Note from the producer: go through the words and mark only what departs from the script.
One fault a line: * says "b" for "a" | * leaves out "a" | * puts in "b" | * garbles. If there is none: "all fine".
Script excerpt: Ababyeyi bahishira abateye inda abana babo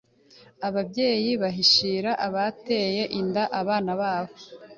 all fine